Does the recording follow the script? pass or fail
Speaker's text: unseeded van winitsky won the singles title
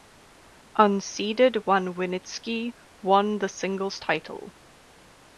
pass